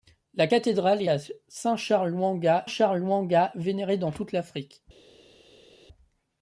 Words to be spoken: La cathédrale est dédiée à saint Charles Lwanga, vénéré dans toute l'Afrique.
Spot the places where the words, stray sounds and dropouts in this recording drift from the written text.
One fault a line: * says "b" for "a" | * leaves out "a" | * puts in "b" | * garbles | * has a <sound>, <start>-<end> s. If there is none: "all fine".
* leaves out "dédiée"
* puts in "Charles Lwanga"